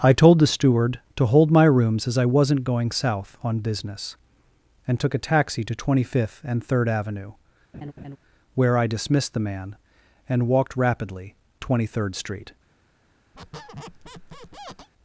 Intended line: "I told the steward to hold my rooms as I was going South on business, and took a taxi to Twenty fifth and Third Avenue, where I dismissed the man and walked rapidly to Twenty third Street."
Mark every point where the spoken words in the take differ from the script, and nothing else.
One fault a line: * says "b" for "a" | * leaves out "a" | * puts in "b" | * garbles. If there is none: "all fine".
* says "wasn't" for "was"
* leaves out "to"